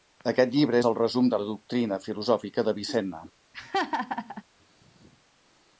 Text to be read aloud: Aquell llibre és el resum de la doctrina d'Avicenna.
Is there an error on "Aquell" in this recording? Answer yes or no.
yes